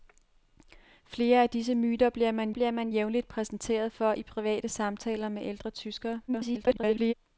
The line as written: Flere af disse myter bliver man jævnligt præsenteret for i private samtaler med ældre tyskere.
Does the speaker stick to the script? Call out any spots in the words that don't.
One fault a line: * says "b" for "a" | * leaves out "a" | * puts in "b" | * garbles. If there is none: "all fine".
* puts in "bliver man"
* garbles